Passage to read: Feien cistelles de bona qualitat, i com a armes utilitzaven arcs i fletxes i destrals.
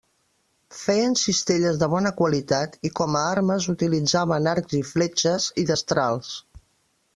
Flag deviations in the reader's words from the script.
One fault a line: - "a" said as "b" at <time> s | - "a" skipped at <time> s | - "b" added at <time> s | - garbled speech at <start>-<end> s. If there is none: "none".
none